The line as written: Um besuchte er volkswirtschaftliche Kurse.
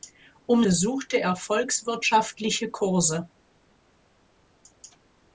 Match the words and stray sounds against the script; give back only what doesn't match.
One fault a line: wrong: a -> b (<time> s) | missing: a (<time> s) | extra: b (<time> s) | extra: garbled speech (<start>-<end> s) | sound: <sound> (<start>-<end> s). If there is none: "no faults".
no faults